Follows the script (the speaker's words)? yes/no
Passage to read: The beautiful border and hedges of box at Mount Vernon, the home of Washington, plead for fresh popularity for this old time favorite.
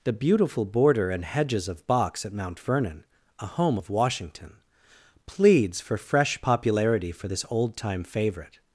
no